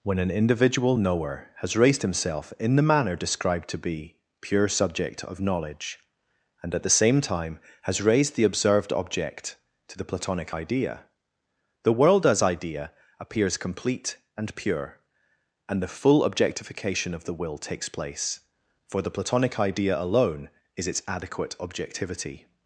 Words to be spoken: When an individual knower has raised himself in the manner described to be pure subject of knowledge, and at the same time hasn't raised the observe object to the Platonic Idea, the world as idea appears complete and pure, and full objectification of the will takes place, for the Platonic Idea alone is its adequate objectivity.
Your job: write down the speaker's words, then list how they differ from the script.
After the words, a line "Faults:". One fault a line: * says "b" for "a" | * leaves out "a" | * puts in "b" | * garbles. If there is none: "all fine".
When an individual knower has raised himself in the manner described to be pure subject of knowledge, and at the same time has raised the observed object to the Platonic Idea, the world as idea appears complete and pure, and the full objectification of the will takes place, for the Platonic Idea alone is its adequate objectivity.
Faults:
* says "has" for "hasn't"
* says "observed" for "observe"
* puts in "the"